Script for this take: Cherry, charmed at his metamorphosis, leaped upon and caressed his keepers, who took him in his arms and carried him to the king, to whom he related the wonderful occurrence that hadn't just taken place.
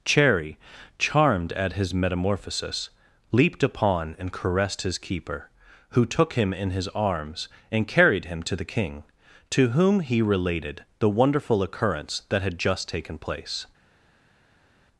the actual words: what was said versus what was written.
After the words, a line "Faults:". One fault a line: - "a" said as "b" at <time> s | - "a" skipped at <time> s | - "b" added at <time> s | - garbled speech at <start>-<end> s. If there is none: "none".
Cherry, charmed at his metamorphosis, leaped upon and caressed his keeper, who took him in his arms and carried him to the king, to whom he related the wonderful occurrence that had just taken place.
Faults:
- "keepers" said as "keeper" at 5.0 s
- "hadn't" said as "had" at 12.4 s